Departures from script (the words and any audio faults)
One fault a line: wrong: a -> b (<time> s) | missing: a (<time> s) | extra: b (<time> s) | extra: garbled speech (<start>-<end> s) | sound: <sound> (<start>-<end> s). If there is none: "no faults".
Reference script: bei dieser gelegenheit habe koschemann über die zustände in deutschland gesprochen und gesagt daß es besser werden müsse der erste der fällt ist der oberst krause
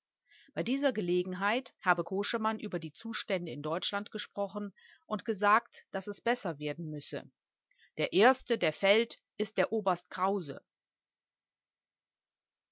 no faults